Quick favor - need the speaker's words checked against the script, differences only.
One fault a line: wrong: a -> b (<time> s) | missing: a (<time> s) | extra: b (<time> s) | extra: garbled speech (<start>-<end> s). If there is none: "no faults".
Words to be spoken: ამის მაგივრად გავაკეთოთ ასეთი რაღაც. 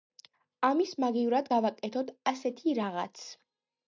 no faults